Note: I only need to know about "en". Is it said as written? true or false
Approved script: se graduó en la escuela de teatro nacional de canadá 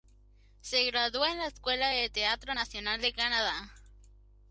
true